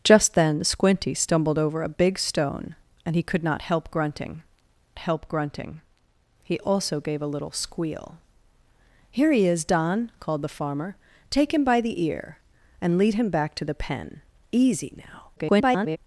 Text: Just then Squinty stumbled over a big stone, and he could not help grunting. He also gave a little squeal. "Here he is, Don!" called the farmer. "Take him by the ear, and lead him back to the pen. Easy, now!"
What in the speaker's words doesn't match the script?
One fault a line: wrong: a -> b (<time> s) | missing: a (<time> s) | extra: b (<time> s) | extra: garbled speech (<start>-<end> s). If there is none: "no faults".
extra: help grunting (5.0 s)
extra: garbled speech (15.4-16.0 s)